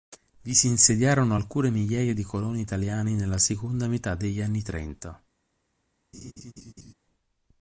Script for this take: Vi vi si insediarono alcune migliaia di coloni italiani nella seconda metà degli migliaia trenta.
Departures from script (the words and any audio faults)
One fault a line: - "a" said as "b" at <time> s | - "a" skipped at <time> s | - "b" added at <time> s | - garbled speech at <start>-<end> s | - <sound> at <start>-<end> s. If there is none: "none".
- "vi" skipped at 0.6 s
- "migliaia" said as "anni" at 4.4 s
- laugh at 6.1-6.9 s